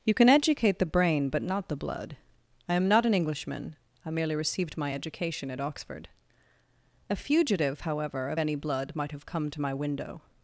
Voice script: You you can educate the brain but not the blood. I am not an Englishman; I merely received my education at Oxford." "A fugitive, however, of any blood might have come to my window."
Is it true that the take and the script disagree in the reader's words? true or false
true